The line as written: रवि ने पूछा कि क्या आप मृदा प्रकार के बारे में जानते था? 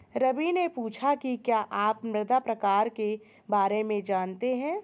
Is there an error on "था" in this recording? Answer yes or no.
yes